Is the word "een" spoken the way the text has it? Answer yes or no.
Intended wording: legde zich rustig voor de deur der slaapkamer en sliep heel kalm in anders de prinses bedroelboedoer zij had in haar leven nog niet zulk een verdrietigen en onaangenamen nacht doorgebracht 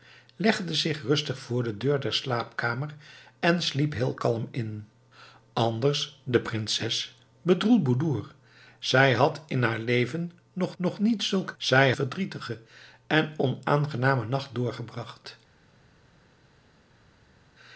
no